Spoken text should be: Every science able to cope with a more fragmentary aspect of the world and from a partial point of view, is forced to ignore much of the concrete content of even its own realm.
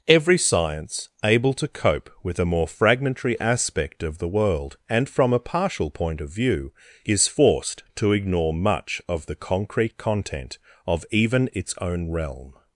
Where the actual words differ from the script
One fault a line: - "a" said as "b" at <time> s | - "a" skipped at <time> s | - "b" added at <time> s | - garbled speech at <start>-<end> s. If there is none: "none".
none